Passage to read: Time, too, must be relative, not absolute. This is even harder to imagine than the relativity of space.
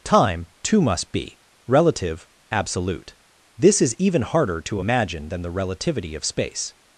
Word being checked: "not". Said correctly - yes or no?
no